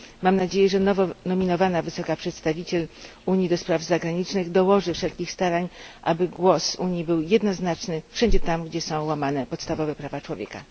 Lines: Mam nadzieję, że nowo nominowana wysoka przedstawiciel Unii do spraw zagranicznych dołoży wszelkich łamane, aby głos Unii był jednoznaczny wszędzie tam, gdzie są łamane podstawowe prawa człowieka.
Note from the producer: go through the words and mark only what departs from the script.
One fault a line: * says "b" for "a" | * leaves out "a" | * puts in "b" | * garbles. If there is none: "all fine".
* says "starań" for "łamane"